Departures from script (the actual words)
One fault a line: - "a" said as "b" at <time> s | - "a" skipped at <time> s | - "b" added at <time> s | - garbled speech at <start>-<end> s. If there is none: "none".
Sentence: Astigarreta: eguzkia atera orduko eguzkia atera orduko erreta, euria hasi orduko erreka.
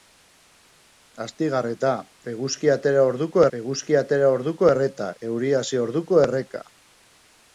none